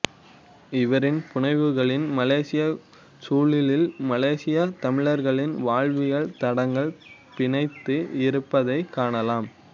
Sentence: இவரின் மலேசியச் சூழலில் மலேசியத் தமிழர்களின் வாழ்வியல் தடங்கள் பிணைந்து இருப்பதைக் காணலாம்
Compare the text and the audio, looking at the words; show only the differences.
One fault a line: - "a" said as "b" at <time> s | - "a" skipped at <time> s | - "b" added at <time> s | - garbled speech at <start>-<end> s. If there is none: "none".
- "புனைவுகளில்" added at 1.3 s